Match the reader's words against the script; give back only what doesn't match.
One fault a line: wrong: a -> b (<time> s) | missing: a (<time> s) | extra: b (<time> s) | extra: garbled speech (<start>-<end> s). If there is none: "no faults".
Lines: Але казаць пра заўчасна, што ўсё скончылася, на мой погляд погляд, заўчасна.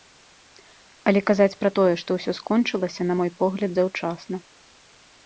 wrong: заўчасна -> тое (1.8 s)
missing: погляд (3.7 s)